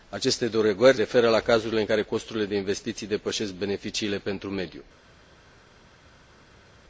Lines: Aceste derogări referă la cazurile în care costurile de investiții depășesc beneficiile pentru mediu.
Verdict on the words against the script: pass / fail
pass